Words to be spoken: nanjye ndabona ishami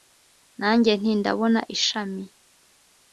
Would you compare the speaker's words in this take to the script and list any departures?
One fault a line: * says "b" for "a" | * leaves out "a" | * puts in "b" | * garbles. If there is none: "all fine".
* puts in "nti"